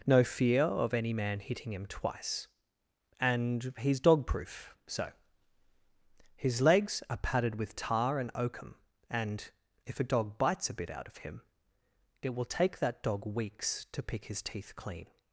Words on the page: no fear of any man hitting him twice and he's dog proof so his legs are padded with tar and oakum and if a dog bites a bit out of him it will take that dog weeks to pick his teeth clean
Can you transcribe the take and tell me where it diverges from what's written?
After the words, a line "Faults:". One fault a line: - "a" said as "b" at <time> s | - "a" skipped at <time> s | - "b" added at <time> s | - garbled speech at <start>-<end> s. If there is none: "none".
no fear of any man hitting him twice and he's dog proof so his legs are padded with tar and oakum and if a dog bites a bit out of him it will take that dog weeks to pick his teeth clean
Faults:
none